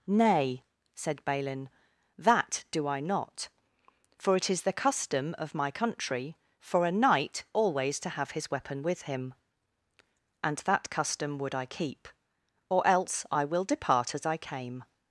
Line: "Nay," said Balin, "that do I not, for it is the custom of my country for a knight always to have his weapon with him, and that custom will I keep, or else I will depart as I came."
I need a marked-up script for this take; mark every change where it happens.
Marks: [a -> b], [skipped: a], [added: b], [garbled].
"Nay," said Balin, "that do I not, for it is the custom of my country for a knight always to have his weapon with him, and that custom [will -> would] I keep, or else I will depart as I came."